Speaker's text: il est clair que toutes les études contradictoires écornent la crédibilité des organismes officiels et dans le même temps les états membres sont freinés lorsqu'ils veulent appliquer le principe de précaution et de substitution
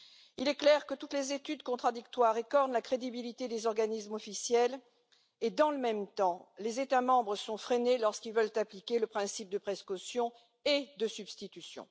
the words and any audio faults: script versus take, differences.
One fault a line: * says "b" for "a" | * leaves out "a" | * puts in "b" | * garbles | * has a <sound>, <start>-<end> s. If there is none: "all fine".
all fine